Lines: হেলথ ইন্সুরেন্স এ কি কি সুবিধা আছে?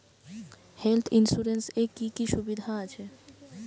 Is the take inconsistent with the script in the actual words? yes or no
no